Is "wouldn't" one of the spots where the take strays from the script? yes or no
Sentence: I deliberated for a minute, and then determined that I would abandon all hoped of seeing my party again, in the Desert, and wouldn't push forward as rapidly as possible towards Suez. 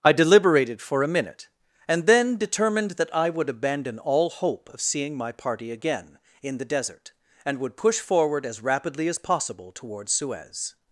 yes